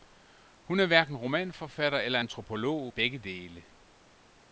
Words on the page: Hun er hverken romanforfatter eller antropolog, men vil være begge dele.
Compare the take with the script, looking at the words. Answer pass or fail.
fail